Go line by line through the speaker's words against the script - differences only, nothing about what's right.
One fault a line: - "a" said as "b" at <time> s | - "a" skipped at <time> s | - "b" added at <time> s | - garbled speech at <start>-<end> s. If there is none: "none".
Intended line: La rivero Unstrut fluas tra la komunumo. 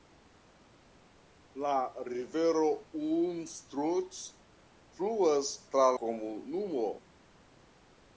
- "la" skipped at 5.9 s